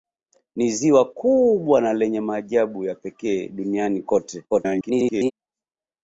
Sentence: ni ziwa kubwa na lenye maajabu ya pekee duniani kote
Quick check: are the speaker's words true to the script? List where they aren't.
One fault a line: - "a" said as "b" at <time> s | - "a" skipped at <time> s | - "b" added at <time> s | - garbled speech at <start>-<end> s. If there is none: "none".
- garbled speech at 4.5-5.3 s